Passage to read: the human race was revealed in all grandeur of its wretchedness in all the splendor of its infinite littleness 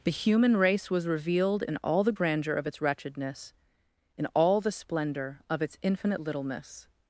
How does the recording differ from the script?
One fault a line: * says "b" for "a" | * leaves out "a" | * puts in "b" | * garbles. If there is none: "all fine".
* puts in "the"